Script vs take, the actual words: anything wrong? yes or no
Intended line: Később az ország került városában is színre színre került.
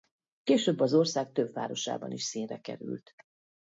yes